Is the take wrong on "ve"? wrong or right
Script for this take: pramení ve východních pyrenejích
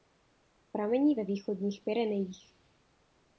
right